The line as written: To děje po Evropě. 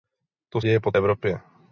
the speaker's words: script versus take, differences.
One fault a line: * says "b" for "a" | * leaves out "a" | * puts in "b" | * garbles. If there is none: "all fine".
all fine